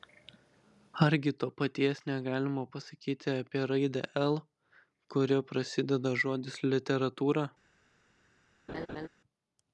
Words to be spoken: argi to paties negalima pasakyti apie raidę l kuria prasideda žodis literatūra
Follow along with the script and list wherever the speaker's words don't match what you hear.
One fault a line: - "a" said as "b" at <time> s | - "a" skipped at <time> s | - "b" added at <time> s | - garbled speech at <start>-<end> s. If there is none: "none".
none